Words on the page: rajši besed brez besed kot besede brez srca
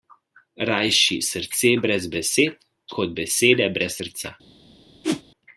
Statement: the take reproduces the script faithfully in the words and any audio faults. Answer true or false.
false